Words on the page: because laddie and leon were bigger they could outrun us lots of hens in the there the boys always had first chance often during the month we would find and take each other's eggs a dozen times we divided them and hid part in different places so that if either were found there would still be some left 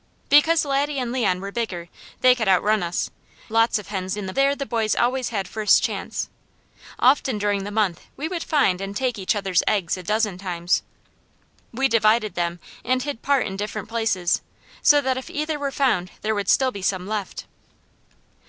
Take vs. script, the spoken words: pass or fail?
pass